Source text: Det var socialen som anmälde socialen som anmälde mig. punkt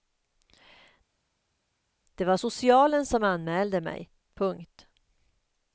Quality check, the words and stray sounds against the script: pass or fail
fail